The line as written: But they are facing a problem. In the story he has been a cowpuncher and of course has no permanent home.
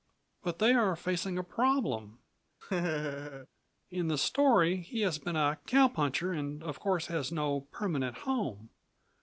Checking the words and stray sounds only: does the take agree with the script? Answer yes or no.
no